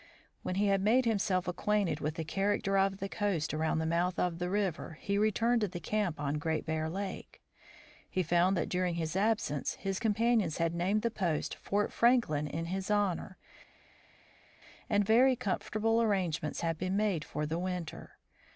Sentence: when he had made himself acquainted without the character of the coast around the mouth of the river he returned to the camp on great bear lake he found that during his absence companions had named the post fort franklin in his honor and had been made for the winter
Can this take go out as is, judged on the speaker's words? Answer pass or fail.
fail